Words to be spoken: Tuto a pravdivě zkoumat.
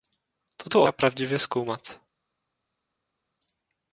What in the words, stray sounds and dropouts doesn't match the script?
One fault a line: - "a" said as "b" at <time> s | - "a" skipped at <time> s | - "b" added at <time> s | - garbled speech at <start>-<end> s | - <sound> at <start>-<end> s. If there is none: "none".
none